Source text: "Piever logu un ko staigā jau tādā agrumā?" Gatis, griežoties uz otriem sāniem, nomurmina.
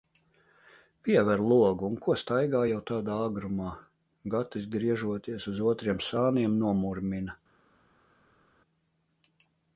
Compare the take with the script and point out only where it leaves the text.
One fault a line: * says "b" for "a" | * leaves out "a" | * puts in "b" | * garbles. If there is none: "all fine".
all fine